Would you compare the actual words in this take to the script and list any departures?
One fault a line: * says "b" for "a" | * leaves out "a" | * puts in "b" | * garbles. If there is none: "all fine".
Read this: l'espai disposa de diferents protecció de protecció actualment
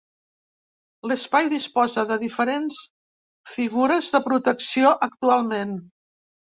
* says "figures" for "protecció"